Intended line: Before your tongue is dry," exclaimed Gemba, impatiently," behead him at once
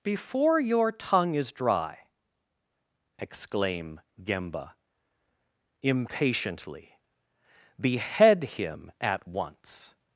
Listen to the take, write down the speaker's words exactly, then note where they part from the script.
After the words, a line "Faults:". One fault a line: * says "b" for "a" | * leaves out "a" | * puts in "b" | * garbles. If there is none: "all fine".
Before your tongue is dry," exclaim Gemba, impatiently," behead him at once
Faults:
* says "exclaim" for "exclaimed"